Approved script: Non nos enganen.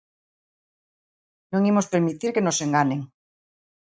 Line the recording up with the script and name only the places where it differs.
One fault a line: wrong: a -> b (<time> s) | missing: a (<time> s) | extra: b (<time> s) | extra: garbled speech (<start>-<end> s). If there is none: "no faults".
extra: imos permitir que (1.7 s)